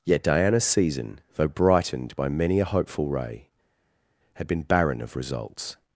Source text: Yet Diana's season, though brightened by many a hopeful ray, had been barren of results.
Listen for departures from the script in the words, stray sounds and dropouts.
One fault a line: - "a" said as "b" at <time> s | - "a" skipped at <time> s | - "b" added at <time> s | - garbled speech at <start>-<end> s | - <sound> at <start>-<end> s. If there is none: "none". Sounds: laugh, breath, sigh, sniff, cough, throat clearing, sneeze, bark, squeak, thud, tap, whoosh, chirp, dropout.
none